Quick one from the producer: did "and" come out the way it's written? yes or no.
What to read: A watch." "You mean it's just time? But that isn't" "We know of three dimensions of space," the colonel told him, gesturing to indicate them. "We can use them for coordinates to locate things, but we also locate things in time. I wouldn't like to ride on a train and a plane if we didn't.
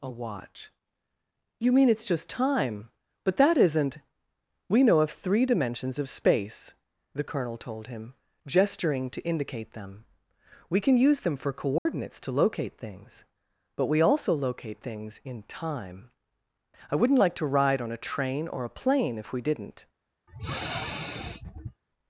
no